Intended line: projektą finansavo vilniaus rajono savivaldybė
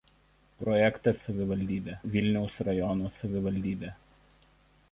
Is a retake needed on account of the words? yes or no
yes